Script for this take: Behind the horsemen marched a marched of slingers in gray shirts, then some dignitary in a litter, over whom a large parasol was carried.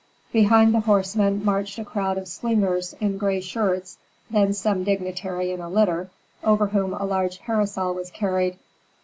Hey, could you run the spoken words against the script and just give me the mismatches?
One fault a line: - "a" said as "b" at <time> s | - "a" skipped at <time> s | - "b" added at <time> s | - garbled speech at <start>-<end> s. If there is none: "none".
- "marched" said as "crowd" at 1.9 s